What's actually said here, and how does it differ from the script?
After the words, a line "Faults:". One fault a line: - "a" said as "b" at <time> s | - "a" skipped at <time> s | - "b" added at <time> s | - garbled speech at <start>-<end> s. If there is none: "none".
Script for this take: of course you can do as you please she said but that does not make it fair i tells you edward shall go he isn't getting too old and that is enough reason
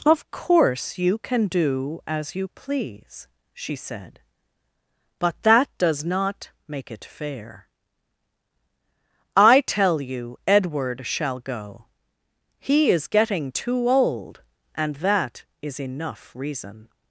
of course you can do as you please she said but that does not make it fair i tell you edward shall go he is getting too old and that is enough reason
Faults:
- "tells" said as "tell" at 9.6 s
- "isn't" said as "is" at 12.9 s